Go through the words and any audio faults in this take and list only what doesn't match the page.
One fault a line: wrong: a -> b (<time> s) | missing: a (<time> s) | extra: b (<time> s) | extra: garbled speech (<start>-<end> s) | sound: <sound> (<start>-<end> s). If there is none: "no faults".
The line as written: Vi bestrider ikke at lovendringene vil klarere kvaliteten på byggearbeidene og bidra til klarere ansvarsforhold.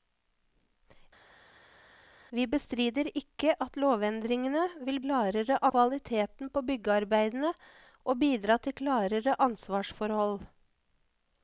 no faults